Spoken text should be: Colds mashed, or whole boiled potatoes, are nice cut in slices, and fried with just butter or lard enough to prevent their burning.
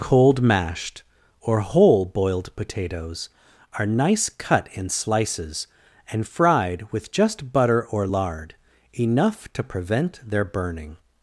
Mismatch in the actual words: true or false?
true